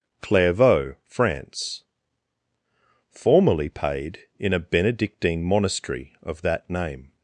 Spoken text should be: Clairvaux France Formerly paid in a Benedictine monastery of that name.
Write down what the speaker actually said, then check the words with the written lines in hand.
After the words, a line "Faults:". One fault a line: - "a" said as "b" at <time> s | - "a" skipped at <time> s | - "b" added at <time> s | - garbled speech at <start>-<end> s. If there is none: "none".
Clairvaux France Formerly paid in a Benedictine monastery of that name.
Faults:
none